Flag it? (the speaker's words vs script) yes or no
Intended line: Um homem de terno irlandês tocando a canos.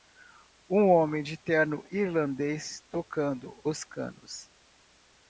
yes